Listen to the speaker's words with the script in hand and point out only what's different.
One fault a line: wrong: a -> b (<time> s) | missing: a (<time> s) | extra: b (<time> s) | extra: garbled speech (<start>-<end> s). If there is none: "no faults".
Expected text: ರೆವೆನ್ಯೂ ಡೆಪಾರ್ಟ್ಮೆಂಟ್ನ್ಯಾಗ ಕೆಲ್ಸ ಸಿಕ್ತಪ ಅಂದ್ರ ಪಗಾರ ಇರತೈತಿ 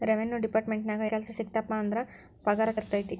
no faults